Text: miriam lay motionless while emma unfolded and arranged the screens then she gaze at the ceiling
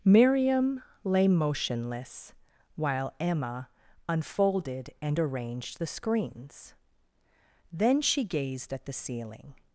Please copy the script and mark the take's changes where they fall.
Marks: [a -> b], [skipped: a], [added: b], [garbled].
miriam lay motionless while emma unfolded and arranged the screens then she [gaze -> gazed] at the ceiling